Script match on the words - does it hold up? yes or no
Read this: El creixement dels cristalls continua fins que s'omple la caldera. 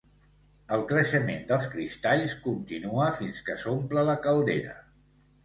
yes